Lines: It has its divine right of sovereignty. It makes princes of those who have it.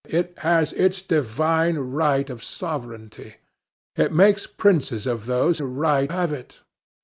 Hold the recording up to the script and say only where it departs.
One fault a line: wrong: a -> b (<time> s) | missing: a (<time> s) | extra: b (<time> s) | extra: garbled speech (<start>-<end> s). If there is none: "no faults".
wrong: who -> right (5.6 s)